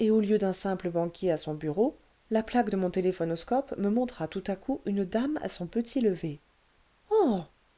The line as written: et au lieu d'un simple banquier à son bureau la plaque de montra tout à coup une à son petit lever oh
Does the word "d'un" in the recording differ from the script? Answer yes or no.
no